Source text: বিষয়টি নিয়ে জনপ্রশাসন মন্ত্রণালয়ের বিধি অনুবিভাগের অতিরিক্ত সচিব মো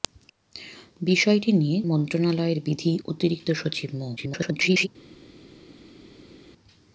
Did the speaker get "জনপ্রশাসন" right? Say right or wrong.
wrong